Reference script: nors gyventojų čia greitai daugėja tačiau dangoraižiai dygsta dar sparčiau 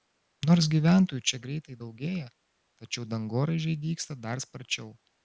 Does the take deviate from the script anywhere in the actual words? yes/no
no